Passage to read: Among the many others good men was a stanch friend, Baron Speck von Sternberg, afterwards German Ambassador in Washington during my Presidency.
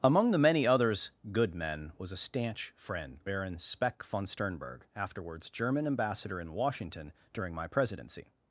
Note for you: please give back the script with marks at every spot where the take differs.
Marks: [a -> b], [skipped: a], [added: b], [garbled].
Among the many others good men was a stanch friend, Baron Speck von Sternberg, afterwards German Ambassador in Washington during my Presidency.